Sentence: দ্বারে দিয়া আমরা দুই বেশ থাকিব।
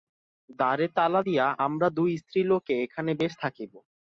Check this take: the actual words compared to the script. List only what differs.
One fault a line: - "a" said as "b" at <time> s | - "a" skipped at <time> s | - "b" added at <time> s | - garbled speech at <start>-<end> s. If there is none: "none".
- "তালা" added at 0.9 s
- "স্ত্রীলোকে এখানে" added at 2.2 s